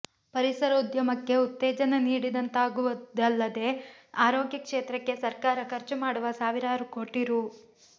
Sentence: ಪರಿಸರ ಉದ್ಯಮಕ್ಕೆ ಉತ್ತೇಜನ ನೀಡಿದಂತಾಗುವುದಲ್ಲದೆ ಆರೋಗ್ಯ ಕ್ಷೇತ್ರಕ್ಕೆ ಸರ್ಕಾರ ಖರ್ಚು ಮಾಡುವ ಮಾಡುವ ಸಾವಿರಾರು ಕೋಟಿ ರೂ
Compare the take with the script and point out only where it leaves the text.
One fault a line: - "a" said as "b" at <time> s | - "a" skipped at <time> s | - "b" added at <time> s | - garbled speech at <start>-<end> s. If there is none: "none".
- "ಮಾಡುವ" skipped at 6.3 s